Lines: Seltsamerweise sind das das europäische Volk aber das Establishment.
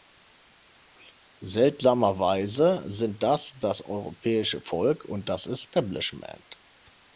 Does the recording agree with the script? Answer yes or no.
no